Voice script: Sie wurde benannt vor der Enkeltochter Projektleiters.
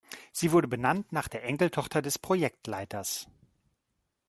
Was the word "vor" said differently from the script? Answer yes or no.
yes